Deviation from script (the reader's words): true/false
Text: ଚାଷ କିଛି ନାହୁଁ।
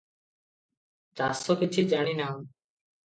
true